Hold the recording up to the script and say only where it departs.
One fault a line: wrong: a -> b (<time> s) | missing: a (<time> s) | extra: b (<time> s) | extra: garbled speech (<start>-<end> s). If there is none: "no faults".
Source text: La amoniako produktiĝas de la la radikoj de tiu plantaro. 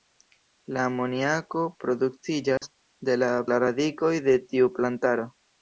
no faults